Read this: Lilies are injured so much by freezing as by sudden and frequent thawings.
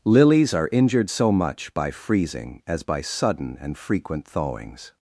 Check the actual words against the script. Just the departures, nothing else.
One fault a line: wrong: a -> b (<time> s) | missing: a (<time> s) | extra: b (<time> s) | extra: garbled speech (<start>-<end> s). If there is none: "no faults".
no faults